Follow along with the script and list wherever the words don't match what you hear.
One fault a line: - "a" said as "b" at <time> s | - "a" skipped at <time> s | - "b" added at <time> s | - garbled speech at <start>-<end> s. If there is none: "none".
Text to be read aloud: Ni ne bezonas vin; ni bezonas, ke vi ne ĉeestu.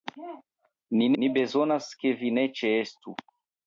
- "ne bezonas vin" skipped at 1.1 s